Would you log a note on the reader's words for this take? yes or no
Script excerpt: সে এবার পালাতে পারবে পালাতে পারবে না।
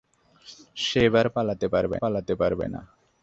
no